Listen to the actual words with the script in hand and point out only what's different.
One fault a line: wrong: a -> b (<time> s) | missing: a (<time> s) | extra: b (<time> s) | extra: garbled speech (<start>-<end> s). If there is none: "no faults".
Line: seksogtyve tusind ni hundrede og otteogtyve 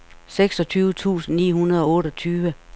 no faults